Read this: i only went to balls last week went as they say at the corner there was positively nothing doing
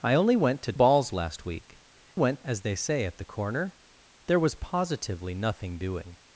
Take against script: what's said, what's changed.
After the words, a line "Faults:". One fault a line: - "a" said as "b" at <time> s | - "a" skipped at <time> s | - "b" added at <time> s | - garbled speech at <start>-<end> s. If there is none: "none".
i only went to balls last week went as they say at the corner there was positively nothing doing
Faults:
none